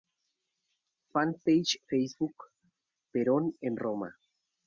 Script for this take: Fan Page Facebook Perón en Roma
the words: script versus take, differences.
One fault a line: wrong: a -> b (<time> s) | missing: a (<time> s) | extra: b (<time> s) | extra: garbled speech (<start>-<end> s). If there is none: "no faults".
no faults